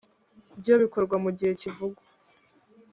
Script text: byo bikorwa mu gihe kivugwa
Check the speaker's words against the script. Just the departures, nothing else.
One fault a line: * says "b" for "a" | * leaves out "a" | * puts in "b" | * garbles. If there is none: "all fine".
all fine